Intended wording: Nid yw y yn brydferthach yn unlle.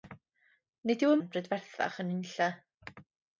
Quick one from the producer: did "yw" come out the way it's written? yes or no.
yes